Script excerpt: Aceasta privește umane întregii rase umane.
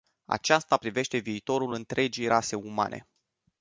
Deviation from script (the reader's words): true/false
true